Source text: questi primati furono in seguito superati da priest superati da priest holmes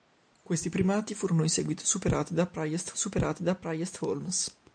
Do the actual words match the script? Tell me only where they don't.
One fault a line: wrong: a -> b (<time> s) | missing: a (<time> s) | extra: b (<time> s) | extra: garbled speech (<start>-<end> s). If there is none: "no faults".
no faults